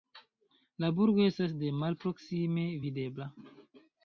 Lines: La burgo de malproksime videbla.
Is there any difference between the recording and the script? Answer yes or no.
yes